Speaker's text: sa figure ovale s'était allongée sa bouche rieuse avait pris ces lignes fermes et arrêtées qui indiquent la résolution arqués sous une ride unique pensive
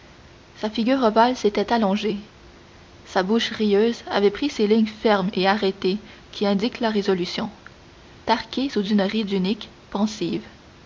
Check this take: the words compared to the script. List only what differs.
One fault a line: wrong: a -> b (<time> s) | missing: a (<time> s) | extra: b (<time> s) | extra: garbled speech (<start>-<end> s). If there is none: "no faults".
no faults